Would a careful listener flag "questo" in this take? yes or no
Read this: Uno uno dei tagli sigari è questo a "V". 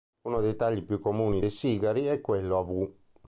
yes